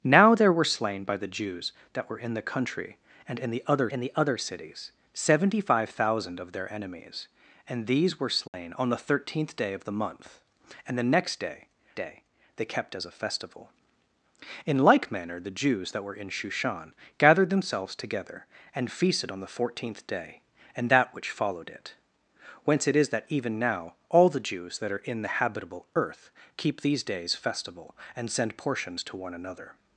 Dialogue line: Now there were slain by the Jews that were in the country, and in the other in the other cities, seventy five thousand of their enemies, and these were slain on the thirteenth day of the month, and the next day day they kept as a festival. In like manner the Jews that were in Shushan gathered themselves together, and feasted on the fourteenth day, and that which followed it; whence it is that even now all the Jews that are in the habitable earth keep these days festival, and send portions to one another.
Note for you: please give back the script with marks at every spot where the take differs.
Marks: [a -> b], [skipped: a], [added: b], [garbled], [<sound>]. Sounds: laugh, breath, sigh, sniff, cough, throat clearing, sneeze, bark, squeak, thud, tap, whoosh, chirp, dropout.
Now there were slain by the Jews that were in the country, and in the other in the other cities, seventy five thousand of their enemies, and these were slain [dropout] on the thirteenth day of the month, and the next day day they kept as a festival. In like manner the Jews that were in Shushan gathered themselves together, and feasted on the fourteenth day, and that which followed it; whence it is that even now all the Jews that are in the habitable earth keep these days festival, and send portions to one another.